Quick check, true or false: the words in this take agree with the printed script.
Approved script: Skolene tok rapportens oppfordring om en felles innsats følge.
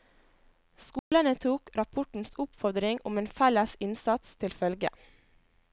false